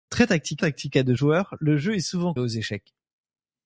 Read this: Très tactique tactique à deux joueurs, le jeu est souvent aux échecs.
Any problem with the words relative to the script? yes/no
no